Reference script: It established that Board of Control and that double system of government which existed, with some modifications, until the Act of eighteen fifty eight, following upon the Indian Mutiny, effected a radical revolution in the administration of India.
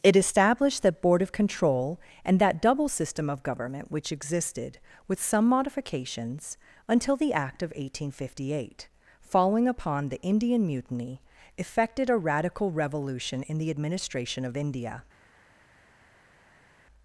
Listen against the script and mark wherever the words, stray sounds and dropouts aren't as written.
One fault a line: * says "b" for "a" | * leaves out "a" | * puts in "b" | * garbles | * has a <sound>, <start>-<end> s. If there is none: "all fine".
all fine